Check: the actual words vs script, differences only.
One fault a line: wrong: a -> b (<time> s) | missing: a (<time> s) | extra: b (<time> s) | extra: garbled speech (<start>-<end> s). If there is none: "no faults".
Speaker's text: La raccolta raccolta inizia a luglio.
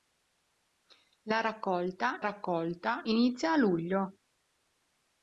no faults